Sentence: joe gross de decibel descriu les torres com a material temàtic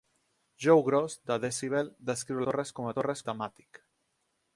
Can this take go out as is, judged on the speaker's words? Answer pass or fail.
fail